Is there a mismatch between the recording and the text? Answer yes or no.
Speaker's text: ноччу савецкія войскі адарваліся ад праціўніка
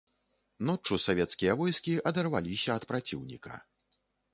no